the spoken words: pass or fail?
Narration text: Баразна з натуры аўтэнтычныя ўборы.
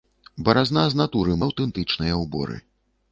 pass